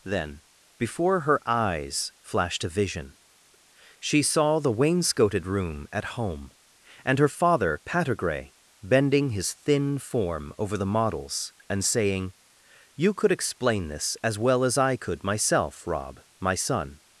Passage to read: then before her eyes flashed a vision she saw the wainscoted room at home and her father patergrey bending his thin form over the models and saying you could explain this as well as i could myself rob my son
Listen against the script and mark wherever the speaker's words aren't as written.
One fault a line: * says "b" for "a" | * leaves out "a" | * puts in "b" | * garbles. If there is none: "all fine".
all fine